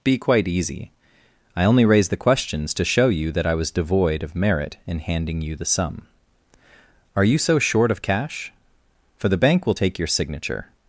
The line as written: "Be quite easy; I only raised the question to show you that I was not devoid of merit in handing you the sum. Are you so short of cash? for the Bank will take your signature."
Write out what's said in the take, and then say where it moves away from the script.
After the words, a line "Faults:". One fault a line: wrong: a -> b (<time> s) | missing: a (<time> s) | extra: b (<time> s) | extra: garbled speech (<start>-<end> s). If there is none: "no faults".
"Be quite easy; I only raised the questions to show you that I was devoid of merit in handing you the sum. Are you so short of cash? for the Bank will take your signature."
Faults:
wrong: question -> questions (2.2 s)
missing: not (3.7 s)